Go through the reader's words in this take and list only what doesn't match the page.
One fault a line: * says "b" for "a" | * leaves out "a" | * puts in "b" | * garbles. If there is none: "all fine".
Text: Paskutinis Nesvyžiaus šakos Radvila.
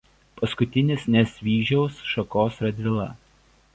all fine